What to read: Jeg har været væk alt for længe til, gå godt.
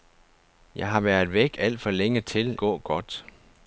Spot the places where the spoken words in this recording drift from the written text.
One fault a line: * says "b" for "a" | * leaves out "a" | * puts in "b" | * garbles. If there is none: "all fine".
all fine